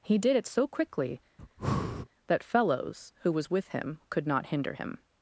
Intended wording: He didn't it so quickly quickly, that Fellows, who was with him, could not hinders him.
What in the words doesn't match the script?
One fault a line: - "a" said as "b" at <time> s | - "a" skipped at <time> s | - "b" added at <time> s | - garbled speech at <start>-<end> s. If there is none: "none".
- "didn't" said as "did" at 0.2 s
- "quickly" skipped at 1.2 s
- "hinders" said as "hinder" at 4.5 s